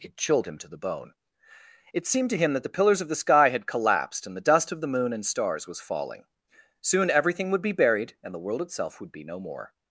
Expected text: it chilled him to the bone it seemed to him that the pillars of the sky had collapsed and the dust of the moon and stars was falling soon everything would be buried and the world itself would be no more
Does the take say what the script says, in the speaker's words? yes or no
yes